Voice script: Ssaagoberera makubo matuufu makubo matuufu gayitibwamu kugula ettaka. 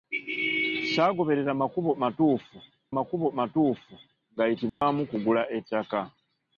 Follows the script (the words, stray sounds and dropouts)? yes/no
no